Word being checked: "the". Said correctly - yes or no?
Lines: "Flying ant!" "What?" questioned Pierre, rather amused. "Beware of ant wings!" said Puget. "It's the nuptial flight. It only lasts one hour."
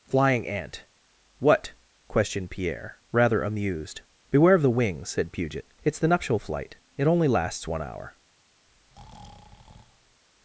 yes